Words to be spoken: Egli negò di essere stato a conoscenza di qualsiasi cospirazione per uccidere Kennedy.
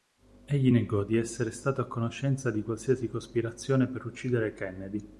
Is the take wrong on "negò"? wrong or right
right